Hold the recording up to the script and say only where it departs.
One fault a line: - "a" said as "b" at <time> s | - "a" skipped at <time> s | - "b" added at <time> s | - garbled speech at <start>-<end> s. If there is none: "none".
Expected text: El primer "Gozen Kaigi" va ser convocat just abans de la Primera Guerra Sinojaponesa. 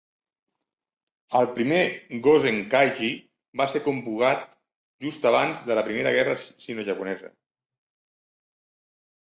none